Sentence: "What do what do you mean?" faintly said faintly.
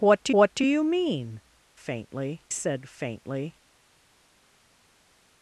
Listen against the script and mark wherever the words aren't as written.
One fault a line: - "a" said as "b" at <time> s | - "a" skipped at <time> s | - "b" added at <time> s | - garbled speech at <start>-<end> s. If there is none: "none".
none